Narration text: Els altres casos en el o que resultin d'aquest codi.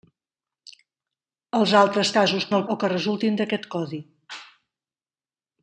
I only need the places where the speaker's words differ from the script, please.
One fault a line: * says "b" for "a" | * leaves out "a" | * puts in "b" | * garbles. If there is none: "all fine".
all fine